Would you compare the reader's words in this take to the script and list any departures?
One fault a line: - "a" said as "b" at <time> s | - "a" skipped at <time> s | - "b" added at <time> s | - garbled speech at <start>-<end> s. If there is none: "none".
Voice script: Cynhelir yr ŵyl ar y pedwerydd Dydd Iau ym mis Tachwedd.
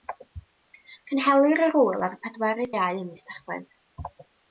- "Dydd" skipped at 2.7 s